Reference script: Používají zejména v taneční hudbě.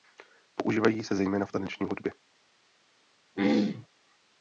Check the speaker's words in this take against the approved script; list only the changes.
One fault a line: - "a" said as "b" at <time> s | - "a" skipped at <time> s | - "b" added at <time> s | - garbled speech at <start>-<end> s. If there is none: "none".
- "se" added at 1.0 s